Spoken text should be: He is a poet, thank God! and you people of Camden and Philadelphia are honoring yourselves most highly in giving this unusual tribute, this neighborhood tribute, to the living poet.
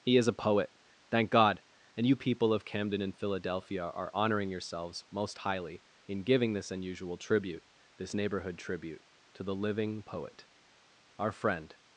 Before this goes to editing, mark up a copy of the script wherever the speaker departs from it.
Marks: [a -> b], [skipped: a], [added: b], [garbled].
He is a poet, thank God! and you people of Camden and Philadelphia are honoring yourselves most highly in giving this unusual tribute, this neighborhood tribute, to the living poet. [added: Our friend]